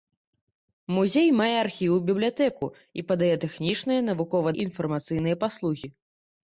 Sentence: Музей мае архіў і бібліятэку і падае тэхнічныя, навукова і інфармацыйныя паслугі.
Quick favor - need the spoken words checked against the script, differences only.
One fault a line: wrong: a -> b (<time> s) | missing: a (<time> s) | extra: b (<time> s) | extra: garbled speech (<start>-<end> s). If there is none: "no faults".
no faults